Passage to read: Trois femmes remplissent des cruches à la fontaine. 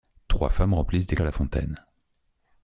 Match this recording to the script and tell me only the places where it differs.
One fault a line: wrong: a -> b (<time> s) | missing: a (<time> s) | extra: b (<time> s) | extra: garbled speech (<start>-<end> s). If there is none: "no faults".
missing: cruches (1.2 s)